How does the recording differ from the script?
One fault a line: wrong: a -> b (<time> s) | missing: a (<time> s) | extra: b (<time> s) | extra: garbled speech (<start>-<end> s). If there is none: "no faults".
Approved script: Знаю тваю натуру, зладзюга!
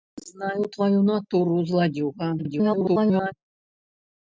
extra: garbled speech (2.4-3.3 s)